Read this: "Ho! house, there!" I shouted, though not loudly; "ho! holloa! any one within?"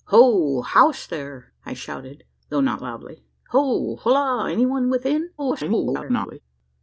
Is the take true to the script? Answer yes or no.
no